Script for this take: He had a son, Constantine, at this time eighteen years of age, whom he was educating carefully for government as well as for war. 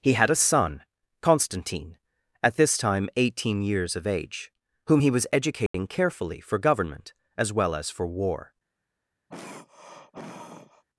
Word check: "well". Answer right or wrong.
right